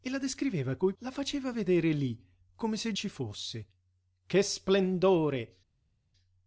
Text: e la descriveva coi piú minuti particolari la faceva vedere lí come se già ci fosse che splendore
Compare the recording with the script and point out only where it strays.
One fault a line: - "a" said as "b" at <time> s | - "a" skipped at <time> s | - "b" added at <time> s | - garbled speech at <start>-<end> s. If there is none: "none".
- "piú minuti particolari" skipped at 0.9 s
- "già" skipped at 2.9 s